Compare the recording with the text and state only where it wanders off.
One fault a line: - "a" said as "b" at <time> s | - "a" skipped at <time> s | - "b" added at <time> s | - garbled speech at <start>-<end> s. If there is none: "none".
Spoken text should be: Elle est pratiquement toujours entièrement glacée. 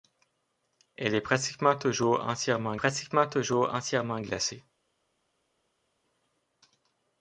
- "pratiquement toujours entièrement" added at 2.7 s